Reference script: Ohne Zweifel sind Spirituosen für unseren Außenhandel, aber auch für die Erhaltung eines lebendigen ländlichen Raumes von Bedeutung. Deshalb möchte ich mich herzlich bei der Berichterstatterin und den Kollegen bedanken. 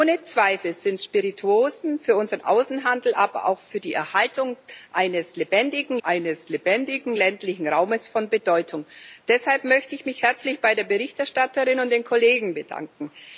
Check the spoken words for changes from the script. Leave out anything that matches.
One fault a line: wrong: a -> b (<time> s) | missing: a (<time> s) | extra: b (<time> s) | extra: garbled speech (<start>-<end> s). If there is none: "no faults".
extra: eines lebendigen (6.0 s)